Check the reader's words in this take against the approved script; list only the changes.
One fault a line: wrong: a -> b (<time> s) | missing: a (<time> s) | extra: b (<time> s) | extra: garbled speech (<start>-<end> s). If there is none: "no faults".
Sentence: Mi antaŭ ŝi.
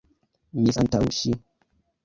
no faults